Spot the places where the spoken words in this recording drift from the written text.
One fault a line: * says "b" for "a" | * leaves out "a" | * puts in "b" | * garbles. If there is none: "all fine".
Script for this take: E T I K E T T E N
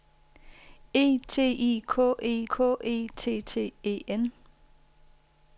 * puts in "K E"